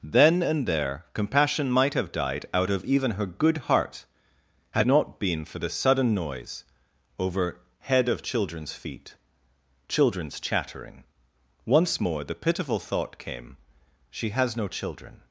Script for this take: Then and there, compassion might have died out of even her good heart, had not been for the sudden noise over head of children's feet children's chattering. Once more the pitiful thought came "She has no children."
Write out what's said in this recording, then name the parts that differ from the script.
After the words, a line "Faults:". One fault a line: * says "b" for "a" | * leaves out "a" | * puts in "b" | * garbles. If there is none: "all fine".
Then and there, compassion might have died out of even her good heart, had not been for the sudden noise over head of children's feet children's chattering. Once more the pitiful thought came "She has no children."
Faults:
all fine